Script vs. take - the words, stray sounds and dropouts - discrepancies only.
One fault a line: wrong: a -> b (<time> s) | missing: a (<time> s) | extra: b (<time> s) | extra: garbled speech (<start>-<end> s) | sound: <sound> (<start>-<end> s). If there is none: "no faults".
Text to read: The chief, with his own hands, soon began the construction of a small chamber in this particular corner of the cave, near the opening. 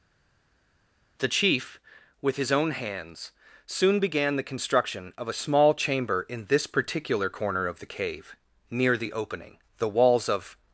extra: The walls of (9.8 s)